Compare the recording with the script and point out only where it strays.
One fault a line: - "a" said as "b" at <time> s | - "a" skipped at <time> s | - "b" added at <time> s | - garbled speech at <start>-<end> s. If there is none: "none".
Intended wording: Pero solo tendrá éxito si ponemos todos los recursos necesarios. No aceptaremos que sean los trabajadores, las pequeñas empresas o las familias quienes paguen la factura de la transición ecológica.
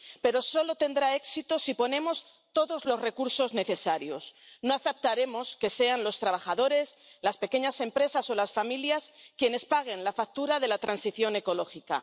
none